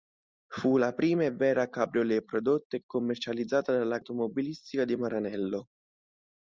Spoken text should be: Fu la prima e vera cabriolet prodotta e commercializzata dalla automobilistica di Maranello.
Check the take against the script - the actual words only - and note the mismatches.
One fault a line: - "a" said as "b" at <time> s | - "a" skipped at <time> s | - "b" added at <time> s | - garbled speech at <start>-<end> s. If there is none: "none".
none